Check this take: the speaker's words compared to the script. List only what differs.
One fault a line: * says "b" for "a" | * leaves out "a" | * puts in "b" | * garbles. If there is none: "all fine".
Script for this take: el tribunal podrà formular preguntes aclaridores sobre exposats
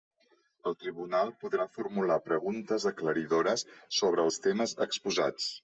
* puts in "els temes"